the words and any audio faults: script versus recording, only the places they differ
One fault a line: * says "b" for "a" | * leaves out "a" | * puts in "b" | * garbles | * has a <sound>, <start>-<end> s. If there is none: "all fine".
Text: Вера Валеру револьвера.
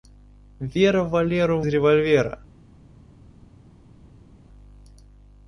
all fine